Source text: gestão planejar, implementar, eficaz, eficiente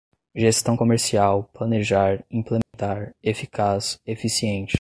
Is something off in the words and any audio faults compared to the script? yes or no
yes